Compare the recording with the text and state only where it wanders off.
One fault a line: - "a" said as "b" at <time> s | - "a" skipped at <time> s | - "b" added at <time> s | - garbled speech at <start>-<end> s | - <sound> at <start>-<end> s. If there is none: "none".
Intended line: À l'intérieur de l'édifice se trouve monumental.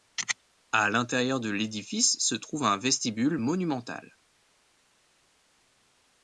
- "un vestibule" added at 2.6 s